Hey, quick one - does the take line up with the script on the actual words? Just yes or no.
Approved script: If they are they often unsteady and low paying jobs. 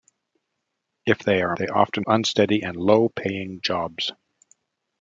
yes